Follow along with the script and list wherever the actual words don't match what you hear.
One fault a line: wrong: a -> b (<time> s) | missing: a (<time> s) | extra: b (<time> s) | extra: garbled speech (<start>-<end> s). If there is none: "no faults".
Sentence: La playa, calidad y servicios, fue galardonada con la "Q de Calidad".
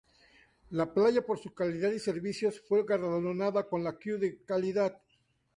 extra: por su (1.2 s)